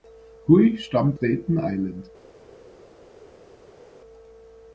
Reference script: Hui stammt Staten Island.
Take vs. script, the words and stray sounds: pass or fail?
pass